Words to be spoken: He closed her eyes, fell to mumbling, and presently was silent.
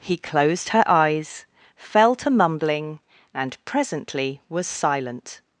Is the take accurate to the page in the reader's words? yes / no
yes